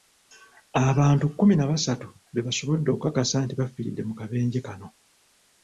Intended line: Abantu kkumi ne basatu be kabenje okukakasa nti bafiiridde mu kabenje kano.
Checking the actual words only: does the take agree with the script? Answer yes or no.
no